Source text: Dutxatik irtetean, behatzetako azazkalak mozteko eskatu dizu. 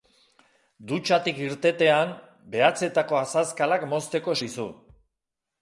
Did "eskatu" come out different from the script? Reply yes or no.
yes